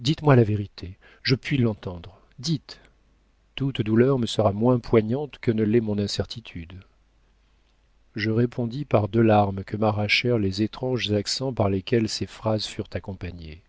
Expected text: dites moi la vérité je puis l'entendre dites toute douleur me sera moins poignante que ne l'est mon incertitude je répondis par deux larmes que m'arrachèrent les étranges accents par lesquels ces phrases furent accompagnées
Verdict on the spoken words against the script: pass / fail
pass